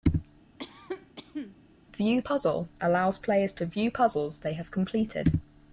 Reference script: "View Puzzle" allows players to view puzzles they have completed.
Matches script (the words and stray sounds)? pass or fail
fail